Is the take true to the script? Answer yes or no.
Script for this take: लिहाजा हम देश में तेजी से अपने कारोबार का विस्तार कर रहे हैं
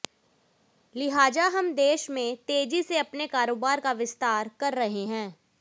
yes